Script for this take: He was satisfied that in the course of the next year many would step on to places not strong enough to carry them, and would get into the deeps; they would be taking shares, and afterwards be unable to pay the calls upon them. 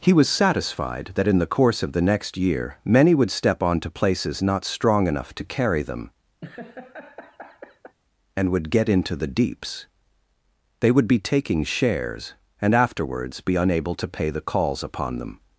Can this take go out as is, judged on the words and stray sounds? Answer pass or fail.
fail